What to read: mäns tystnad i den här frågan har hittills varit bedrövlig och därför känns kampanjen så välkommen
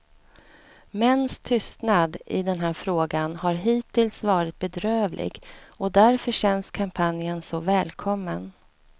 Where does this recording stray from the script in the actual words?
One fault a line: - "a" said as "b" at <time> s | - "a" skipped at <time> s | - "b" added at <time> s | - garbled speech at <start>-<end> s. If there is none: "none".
none